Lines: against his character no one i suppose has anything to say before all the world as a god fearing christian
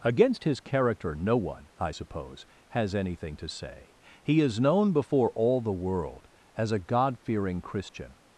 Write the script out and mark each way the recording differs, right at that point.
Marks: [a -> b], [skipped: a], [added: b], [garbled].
against his character no one i suppose has anything to say [added: he is known] before all the world as a god fearing christian